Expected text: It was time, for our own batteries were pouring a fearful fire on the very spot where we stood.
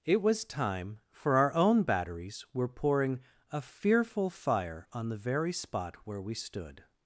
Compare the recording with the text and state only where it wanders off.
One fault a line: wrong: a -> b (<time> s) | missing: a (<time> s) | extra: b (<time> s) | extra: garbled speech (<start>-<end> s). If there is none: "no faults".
no faults